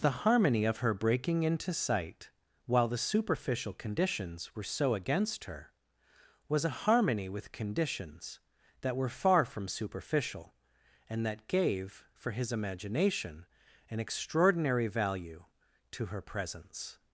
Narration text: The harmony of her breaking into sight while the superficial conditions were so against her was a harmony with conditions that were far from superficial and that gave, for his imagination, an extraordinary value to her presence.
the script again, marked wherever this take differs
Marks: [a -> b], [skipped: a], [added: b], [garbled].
The harmony of her breaking into sight while the superficial conditions were so against her was a harmony with conditions that were far from superficial and that gave, for his imagination, an extraordinary value to her presence.